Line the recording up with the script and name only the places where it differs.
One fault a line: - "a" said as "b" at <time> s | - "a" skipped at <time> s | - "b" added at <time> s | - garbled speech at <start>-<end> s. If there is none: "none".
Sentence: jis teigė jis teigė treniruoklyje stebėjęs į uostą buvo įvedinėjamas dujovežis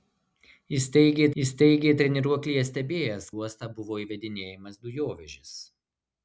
none